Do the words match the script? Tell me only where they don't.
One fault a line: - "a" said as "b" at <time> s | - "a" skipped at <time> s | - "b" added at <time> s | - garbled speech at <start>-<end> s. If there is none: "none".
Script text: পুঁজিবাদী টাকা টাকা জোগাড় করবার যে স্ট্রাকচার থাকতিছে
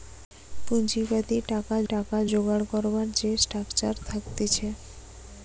none